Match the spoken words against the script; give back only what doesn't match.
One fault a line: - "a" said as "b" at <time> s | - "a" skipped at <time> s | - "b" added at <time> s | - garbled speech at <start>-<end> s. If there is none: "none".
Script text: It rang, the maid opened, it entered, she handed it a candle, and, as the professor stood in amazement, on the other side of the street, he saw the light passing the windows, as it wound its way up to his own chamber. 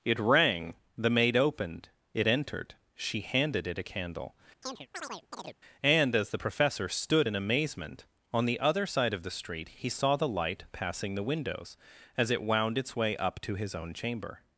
none